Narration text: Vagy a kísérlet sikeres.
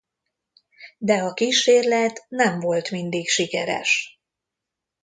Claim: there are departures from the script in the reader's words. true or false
true